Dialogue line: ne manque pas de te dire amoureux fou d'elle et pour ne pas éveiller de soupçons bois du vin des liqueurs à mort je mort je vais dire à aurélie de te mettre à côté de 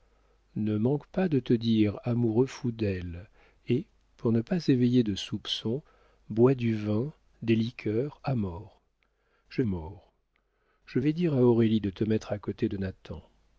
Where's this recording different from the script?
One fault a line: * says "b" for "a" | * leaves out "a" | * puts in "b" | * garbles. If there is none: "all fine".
all fine